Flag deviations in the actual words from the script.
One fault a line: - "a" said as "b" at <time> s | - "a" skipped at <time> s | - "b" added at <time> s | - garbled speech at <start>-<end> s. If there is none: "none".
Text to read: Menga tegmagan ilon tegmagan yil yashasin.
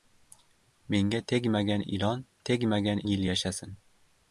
none